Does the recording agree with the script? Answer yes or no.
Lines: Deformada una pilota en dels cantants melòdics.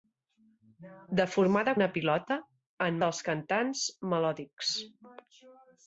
yes